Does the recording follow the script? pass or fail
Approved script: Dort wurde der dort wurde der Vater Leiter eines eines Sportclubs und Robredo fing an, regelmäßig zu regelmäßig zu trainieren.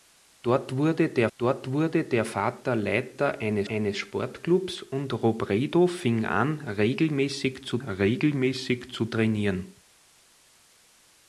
pass